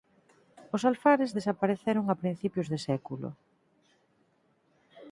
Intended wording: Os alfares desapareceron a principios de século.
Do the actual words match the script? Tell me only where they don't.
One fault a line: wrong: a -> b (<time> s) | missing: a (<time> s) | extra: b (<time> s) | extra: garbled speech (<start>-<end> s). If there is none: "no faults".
no faults